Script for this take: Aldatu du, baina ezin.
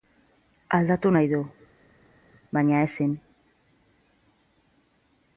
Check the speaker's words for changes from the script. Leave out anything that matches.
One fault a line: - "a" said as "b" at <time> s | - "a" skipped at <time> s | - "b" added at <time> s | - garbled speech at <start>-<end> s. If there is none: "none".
- "nahi" added at 1.1 s